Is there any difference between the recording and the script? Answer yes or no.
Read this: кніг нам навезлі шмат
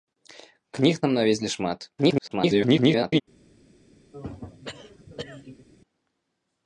yes